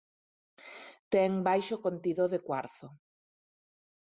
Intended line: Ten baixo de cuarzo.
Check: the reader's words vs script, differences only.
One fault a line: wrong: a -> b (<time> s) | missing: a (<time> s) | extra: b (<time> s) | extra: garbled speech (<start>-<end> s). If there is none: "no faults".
extra: contido (1.9 s)